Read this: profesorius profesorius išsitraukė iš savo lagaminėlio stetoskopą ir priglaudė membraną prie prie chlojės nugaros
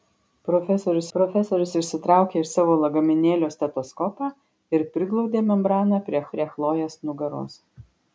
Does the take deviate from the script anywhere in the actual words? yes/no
no